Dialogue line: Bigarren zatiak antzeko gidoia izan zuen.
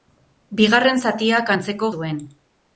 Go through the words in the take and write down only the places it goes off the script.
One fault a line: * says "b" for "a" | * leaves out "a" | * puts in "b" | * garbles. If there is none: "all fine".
* leaves out "gidoia izan"